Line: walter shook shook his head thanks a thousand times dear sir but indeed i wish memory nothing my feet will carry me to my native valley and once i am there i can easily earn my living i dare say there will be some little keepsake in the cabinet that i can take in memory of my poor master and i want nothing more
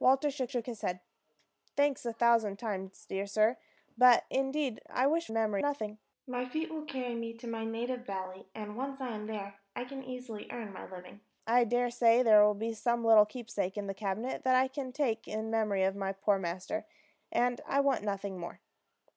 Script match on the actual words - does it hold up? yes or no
yes